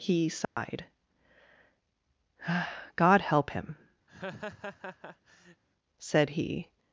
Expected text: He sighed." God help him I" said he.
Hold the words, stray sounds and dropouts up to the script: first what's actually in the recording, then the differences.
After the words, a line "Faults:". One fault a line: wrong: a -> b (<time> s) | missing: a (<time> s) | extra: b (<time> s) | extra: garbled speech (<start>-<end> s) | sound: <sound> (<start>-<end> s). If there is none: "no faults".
He sighed." God help him" said he.
Faults:
sound: dropout (0.4-0.6 s)
missing: I (3.8 s)
sound: laugh (4.1-5.6 s)